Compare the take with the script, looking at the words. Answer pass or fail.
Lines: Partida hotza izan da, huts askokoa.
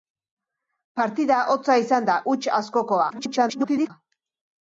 fail